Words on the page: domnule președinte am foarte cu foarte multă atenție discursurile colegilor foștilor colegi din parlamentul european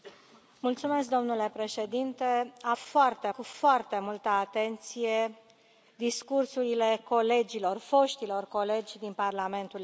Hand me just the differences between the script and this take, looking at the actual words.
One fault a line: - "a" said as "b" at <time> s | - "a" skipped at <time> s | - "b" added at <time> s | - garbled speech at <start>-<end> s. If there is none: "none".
none